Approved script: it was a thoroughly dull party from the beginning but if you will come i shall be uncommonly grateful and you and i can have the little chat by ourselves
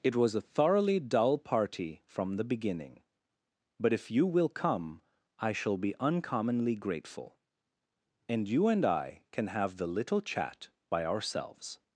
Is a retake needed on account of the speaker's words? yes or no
no